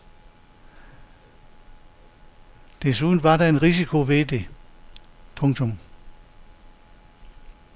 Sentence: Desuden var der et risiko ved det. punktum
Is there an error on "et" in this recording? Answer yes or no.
yes